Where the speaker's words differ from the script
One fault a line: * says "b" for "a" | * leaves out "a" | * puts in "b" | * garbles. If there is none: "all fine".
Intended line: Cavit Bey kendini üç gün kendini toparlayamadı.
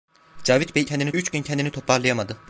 all fine